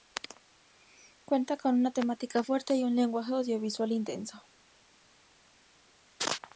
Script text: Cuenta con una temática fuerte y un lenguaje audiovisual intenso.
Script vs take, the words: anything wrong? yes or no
no